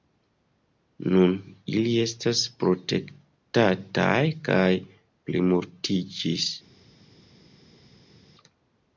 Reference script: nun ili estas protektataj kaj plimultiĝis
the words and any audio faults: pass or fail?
pass